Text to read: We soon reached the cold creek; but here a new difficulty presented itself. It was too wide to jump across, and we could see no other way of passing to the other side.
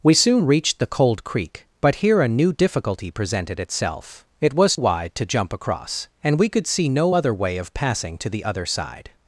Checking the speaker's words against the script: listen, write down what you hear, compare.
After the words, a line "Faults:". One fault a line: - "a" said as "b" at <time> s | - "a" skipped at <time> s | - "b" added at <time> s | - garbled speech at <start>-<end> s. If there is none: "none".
We soon reached the cold creek; but here a new difficulty presented itself. It was wide to jump across, and we could see no other way of passing to the other side.
Faults:
- "too" skipped at 4.8 s